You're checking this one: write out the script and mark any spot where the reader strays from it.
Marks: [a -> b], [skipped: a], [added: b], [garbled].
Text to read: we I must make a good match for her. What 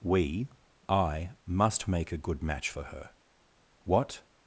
we I must make a good match for her. What